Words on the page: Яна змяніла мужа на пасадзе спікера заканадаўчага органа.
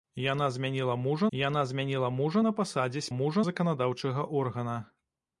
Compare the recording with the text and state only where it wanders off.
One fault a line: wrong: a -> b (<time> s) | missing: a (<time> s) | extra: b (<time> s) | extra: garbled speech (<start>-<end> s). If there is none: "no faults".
extra: яна змяніла мужа (1.4 s)
wrong: спікера -> мужа (3.2 s)